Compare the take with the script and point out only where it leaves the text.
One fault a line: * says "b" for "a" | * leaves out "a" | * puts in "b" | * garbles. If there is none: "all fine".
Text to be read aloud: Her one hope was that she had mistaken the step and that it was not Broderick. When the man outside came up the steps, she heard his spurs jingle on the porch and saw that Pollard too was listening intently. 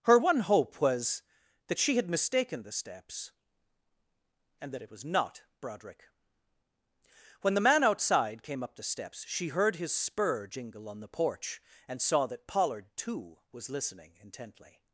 * says "steps" for "step"
* says "spur" for "spurs"